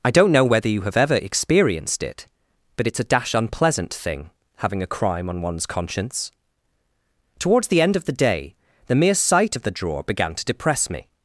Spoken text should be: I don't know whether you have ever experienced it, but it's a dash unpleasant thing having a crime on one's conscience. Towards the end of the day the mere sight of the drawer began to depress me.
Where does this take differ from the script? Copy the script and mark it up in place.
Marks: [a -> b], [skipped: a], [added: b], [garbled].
I don't know whether you have ever experienced it, but it's a dash unpleasant thing having a crime on one's conscience. Towards the end of the day the mere sight of the drawer began to depress me.